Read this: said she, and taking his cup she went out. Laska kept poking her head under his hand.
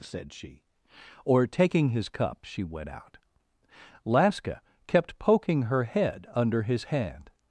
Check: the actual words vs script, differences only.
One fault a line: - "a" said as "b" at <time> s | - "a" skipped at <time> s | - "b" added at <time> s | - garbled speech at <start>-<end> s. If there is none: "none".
- "and" said as "or" at 1.2 s